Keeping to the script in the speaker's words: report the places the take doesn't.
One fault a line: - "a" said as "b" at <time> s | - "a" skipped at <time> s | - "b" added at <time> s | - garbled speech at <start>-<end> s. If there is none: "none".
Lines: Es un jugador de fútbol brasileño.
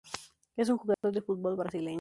none